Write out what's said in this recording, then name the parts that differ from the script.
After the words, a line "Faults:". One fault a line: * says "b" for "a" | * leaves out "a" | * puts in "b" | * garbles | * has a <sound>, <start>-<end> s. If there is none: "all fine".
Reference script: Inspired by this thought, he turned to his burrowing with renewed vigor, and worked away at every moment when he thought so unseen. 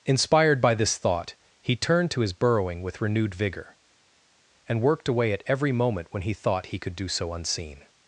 Inspired by this thought, he turned to his burrowing with renewed vigor, and worked away at every moment when he thought he could do so unseen.
Faults:
* puts in "he could do"